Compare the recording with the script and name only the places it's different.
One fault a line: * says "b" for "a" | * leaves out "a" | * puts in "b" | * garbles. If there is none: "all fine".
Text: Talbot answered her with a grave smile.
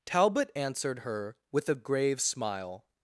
all fine